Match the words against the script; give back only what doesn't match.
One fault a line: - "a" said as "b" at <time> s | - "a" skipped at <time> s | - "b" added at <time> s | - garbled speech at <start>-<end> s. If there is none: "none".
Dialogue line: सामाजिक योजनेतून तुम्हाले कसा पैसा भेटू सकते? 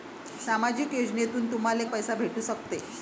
- "कसा" skipped at 1.9 s